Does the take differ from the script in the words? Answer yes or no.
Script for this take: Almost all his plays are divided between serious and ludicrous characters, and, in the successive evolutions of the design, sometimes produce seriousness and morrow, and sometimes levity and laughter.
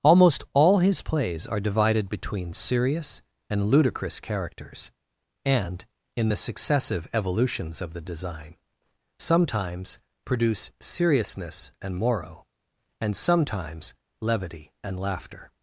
no